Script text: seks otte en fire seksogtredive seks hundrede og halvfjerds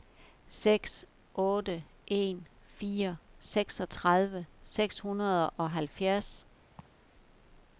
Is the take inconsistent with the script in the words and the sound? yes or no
yes